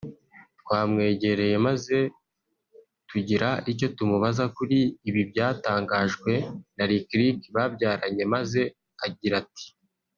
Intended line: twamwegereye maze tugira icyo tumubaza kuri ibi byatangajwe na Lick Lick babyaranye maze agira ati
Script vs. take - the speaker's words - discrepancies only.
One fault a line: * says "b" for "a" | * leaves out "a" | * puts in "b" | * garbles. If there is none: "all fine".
all fine